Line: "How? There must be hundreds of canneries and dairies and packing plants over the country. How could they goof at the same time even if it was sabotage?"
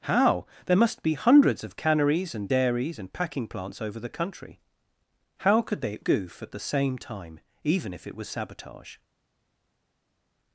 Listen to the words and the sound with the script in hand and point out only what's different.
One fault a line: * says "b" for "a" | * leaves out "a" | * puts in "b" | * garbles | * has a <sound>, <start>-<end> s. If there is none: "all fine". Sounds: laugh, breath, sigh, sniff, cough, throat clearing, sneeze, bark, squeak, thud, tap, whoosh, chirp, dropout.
all fine